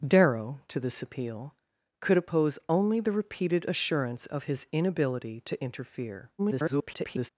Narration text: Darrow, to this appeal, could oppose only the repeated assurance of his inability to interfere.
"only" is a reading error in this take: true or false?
false